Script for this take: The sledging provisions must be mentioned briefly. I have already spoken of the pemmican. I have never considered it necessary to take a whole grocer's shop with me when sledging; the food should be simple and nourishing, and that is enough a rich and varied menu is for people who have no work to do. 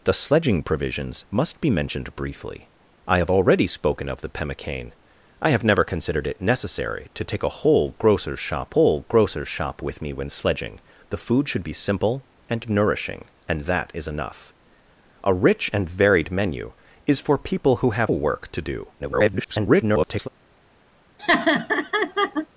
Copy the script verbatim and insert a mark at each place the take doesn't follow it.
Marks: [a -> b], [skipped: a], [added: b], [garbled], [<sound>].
The sledging provisions must be mentioned briefly. I have already spoken of the pemmican. I have never considered it necessary to take a whole grocer's shop [added: whole grocer's shop] with me when sledging; the food should be simple and nourishing, and that is enough a rich and varied menu is for people who have [skipped: no] work to do. [garbled] [laugh]